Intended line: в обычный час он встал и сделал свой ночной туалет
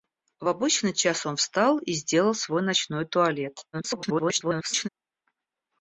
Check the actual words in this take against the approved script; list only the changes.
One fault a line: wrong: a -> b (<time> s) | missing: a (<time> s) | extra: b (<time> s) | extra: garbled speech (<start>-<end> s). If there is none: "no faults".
extra: garbled speech (3.7-4.9 s)